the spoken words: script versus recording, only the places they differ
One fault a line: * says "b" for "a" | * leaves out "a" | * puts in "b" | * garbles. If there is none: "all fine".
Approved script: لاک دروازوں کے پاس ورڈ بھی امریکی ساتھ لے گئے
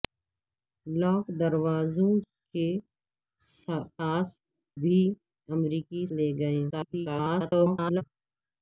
* leaves out "ورڈ"
* leaves out "ساتھ"
* garbles